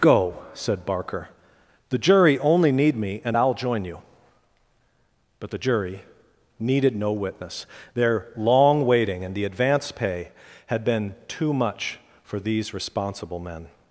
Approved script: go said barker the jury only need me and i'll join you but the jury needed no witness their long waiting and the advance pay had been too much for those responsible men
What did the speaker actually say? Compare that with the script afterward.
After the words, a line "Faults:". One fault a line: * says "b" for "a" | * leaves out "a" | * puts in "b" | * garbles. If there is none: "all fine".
go said barker the jury only need me and i'll join you but the jury needed no witness their long waiting and the advance pay had been too much for these responsible men
Faults:
* says "these" for "those"